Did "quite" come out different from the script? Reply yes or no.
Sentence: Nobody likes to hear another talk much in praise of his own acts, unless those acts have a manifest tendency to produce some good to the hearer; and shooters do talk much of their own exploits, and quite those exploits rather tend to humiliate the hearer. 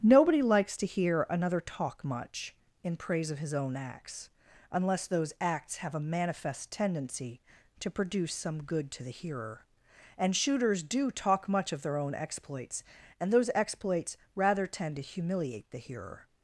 yes